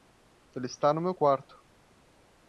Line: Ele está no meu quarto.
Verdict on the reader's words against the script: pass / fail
pass